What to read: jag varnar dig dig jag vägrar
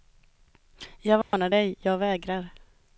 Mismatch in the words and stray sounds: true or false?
true